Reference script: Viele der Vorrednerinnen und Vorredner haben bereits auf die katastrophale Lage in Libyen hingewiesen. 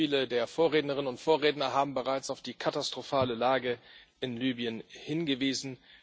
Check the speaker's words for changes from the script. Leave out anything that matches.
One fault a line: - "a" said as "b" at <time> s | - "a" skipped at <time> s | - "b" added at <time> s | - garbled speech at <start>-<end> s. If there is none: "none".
none